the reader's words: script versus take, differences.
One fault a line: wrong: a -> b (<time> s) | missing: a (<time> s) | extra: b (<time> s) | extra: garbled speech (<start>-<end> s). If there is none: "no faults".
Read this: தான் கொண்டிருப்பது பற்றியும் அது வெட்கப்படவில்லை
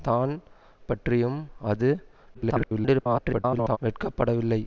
missing: கொண்டிருப்பது (0.3 s)
extra: garbled speech (2.3-3.8 s)